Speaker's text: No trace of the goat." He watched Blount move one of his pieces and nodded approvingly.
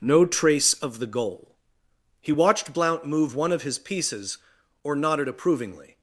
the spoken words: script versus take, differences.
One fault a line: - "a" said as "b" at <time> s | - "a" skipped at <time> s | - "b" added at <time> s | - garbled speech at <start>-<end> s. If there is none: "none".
- "goat" said as "goal" at 1.1 s
- "and" said as "or" at 4.8 s